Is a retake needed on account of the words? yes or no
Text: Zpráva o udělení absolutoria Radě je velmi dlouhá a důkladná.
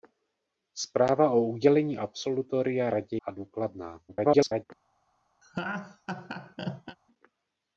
yes